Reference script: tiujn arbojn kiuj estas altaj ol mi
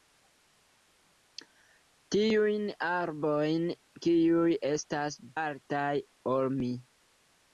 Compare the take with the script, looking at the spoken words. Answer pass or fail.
pass